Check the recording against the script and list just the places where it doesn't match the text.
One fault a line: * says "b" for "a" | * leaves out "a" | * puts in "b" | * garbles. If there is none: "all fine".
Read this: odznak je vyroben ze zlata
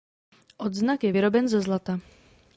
all fine